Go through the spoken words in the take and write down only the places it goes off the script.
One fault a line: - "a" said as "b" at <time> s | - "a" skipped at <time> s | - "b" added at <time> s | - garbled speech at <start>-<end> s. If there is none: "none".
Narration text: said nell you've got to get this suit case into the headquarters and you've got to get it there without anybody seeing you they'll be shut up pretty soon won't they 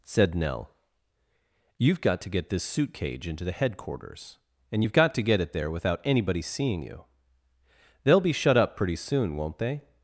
- "case" said as "cage" at 2.9 s